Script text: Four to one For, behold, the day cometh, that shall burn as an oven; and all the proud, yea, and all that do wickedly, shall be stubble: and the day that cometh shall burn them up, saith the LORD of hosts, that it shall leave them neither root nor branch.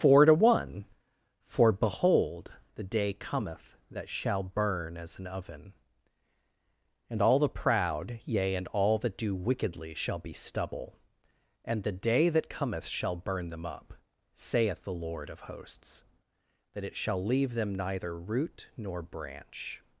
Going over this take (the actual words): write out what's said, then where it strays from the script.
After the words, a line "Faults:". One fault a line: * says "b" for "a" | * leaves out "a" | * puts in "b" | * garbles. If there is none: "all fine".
Four to one For, behold, the day cometh, that shall burn as an oven; and all the proud, yea, and all that do wickedly, shall be stubble: and the day that cometh shall burn them up, saith the LORD of hosts, that it shall leave them neither root nor branch.
Faults:
all fine